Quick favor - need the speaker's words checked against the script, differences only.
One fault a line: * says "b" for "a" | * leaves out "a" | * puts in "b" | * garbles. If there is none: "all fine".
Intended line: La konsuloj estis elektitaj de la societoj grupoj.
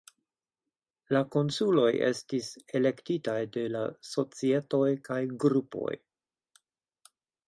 * puts in "kaj"